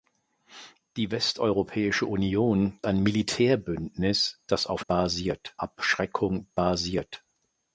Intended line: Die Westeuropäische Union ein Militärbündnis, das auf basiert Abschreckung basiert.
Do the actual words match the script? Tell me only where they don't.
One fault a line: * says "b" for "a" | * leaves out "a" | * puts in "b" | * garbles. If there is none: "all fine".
all fine